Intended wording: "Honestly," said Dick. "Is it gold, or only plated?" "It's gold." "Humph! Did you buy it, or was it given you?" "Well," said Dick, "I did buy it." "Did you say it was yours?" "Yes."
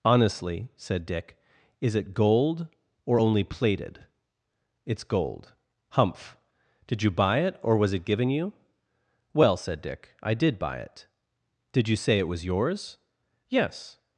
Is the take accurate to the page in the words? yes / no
yes